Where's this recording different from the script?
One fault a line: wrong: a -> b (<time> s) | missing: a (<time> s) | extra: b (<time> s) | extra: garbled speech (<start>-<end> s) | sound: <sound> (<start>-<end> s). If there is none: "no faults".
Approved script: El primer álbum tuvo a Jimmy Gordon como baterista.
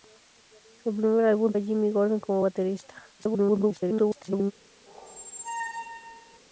missing: tuvo (1.5 s)
extra: garbled speech (3.2-4.5 s)
sound: squeak (4.9-6.4 s)